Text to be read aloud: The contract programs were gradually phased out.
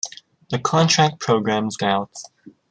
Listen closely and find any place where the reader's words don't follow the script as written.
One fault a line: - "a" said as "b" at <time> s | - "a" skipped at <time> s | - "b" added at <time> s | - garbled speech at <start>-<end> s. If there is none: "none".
- "were gradually phased" skipped at 1.8 s